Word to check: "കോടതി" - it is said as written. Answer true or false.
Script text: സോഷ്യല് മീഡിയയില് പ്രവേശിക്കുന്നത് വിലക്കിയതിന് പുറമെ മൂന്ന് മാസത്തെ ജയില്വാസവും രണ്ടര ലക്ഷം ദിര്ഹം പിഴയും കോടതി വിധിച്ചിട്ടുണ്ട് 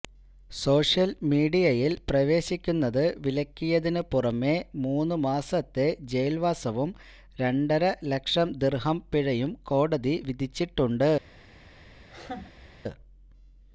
true